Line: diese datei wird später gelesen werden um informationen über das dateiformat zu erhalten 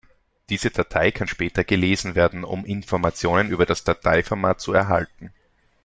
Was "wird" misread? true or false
true